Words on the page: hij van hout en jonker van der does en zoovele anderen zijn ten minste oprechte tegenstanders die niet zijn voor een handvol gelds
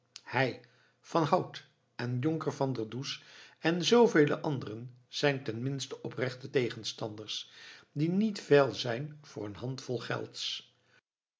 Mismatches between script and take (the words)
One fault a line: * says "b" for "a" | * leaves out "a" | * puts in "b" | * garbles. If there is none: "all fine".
* puts in "veil"